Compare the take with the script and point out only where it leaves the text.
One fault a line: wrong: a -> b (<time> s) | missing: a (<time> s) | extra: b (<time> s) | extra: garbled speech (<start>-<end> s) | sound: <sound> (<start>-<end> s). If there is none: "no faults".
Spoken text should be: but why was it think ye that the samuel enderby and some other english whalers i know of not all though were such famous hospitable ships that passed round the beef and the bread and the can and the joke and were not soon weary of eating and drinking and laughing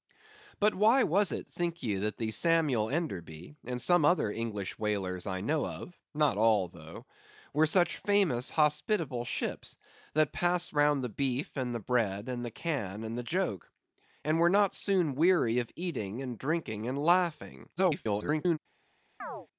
extra: garbled speech (17.8-18.6 s)
sound: chirp (19.2-19.5 s)